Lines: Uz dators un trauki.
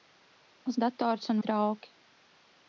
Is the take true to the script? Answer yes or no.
yes